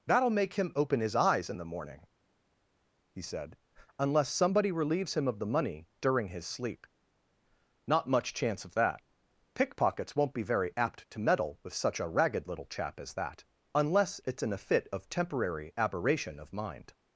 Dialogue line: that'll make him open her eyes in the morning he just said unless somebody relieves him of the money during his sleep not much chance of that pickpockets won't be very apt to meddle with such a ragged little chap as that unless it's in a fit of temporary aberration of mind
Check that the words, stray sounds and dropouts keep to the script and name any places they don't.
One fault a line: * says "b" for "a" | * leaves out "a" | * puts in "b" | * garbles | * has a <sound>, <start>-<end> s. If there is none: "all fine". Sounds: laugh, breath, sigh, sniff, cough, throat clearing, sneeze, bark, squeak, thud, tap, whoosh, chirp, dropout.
* says "his" for "her"
* leaves out "just"